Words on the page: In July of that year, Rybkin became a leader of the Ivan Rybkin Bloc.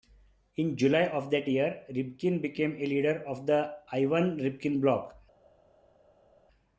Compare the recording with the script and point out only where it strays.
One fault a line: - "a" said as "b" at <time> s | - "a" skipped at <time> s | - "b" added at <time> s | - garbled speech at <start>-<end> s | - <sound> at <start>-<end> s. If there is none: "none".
none